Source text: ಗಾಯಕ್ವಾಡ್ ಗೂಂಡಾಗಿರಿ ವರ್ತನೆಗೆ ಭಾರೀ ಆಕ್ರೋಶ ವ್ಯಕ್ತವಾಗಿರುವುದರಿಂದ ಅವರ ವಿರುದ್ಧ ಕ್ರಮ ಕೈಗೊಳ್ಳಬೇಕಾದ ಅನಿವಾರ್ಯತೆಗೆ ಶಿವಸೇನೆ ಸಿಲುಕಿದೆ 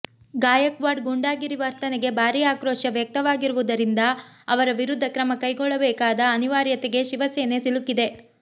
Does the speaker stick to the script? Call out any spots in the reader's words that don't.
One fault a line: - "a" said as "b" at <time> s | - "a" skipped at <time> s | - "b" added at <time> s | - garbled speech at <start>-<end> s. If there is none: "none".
none